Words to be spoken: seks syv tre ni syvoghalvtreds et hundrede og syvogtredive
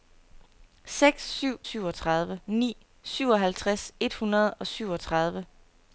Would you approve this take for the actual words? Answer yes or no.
no